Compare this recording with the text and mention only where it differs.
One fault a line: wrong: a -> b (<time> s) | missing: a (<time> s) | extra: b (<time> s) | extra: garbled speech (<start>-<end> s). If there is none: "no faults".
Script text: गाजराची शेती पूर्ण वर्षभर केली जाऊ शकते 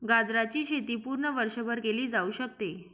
no faults